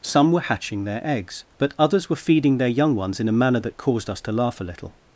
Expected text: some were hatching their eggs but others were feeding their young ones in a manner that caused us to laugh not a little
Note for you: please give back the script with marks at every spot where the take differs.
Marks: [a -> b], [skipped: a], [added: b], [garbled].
some were hatching their eggs but others were feeding their young ones in a manner that caused us to laugh [skipped: not] a little